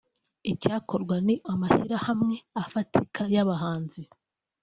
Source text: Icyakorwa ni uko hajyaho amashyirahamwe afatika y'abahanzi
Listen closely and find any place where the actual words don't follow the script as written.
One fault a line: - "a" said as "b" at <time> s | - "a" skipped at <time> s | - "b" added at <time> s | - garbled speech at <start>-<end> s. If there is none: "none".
- "uko hajyaho" skipped at 1.4 s